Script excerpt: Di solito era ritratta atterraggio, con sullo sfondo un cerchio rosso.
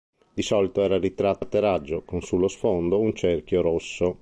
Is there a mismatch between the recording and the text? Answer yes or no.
no